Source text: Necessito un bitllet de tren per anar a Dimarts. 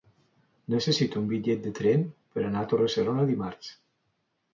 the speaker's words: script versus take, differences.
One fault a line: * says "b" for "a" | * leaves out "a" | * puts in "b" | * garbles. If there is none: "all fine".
* puts in "Torre serona"